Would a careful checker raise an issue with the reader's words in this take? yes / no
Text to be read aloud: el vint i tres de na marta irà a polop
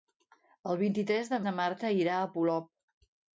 no